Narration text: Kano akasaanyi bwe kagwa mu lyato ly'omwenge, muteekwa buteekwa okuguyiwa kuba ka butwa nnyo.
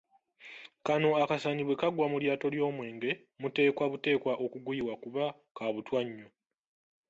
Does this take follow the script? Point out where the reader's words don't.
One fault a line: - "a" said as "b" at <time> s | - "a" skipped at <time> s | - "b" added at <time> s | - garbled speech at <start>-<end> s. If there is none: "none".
none